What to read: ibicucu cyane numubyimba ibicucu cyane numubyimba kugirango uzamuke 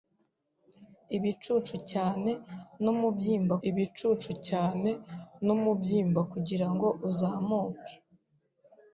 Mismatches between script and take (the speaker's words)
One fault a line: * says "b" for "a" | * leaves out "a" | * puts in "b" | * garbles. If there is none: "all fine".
all fine